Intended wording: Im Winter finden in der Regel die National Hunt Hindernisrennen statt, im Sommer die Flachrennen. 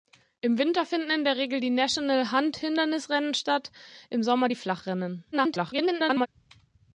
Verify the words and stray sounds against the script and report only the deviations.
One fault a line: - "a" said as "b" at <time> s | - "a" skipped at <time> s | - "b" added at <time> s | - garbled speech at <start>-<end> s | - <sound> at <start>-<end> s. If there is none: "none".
- garbled speech at 5.3-6.3 s